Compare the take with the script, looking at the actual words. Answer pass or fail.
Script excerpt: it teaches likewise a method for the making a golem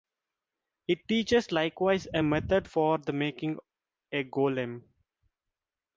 pass